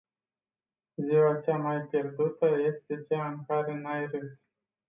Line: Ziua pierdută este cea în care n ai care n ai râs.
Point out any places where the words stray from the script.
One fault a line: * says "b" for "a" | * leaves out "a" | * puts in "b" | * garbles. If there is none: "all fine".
* puts in "cea mai"
* leaves out "care n ai"